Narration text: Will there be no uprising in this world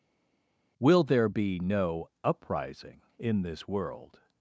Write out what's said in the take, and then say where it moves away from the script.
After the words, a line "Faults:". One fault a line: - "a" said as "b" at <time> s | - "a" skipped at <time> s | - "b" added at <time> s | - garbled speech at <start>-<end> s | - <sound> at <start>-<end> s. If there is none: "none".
Will there be no uprising in this world
Faults:
none